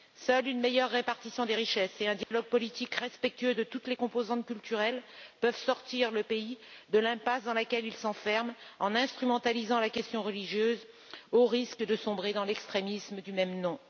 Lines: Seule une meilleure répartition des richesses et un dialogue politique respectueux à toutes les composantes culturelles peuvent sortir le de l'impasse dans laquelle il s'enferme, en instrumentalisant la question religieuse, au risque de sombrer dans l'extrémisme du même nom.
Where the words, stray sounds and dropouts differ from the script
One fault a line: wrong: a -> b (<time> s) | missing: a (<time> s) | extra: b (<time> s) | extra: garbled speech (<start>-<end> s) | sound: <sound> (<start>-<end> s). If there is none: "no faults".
sound: dropout (2.2-2.3 s)
wrong: à -> de (3.5 s)
extra: pays (6.2 s)